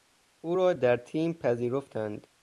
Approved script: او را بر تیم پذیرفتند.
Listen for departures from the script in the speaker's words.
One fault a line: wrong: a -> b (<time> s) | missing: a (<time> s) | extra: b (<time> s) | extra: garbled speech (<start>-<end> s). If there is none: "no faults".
wrong: بر -> در (0.7 s)